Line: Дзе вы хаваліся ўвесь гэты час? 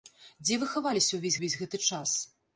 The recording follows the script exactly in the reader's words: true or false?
false